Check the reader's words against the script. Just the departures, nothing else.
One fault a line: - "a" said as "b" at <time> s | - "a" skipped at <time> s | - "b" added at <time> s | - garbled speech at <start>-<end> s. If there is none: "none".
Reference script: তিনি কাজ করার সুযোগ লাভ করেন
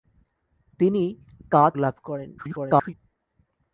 - "করার সুযোগ" skipped at 1.7 s
- garbled speech at 2.4-2.9 s